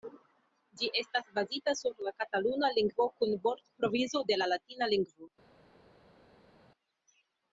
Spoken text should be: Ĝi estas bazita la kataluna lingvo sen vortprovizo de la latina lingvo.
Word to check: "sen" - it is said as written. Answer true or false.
false